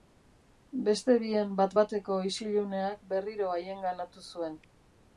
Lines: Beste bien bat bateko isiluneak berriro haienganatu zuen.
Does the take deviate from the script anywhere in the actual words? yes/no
no